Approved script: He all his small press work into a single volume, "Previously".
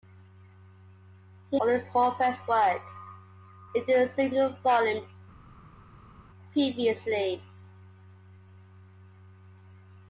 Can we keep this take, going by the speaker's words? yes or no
yes